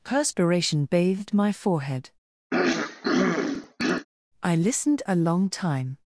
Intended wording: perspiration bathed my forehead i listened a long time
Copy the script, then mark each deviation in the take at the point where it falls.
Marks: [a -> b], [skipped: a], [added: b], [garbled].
perspiration bathed my forehead i listened a long time